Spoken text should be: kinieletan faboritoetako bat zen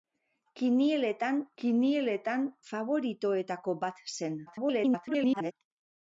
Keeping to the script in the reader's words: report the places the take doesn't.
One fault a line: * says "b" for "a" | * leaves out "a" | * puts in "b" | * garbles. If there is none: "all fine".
* puts in "kinieletan"
* garbles